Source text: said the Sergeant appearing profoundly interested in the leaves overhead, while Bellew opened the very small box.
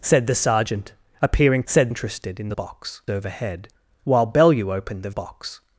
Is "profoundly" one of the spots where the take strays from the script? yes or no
yes